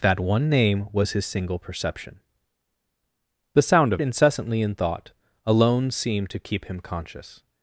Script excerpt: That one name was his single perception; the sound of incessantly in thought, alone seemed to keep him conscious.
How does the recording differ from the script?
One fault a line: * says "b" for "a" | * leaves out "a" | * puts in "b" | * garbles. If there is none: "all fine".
all fine